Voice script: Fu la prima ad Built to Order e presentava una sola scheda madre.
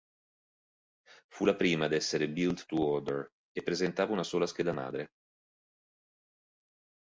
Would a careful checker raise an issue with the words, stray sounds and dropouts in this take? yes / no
yes